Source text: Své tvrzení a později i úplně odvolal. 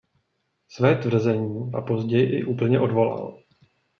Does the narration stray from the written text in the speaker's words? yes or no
no